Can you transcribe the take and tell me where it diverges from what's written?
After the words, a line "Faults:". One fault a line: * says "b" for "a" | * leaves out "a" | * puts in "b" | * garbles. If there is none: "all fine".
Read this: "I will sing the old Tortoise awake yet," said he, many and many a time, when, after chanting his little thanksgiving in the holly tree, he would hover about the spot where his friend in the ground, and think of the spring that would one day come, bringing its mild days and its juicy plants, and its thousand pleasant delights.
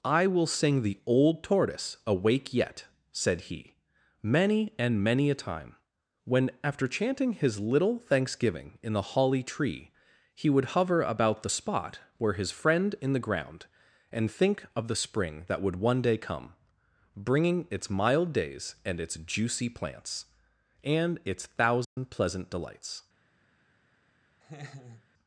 "I will sing the old Tortoise awake yet," said he, many and many a time, when, after chanting his little thanksgiving in the holly tree, he would hover about the spot where his friend in the ground, and think of the spring that would one day come, bringing its mild days and its juicy plants, and its thousand pleasant delights.
Faults:
all fine